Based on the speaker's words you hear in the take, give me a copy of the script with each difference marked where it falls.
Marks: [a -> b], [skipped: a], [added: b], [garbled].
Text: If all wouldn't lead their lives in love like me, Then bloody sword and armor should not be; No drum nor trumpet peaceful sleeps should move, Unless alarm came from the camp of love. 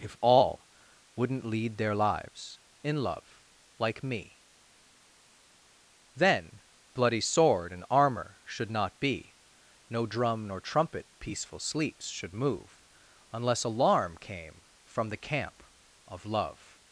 If all wouldn't lead their lives in love like me, Then bloody sword and armor should not be; No drum nor trumpet peaceful sleeps should move, Unless alarm came from the camp of love.